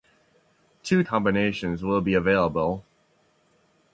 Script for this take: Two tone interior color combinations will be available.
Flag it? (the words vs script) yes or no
yes